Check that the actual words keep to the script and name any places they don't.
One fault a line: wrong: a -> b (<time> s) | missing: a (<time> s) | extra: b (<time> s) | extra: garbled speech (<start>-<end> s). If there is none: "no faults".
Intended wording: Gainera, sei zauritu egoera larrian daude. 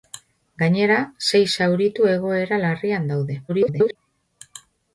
extra: garbled speech (3.5-4.0 s)